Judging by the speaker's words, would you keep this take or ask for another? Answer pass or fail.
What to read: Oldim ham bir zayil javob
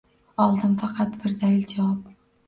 fail